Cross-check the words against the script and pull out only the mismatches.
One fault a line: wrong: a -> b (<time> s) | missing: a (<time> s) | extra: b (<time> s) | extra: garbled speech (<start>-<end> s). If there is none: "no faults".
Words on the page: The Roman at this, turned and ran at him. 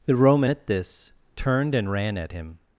no faults